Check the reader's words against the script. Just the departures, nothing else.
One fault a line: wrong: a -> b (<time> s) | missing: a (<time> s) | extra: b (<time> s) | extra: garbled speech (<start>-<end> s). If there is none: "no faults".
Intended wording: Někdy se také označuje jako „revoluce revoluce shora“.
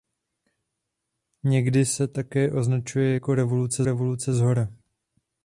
no faults